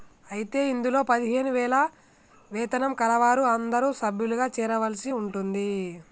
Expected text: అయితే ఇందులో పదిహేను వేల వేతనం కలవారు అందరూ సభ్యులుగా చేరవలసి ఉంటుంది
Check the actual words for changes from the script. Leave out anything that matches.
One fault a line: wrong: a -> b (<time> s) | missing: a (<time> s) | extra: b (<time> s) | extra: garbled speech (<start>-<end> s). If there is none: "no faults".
no faults